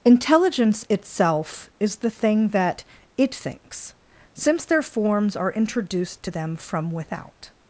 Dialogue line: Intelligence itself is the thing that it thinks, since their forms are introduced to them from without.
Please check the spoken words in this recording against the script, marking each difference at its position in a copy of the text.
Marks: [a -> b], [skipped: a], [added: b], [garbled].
Intelligence itself is the thing that it thinks, since their forms are introduced to them from without.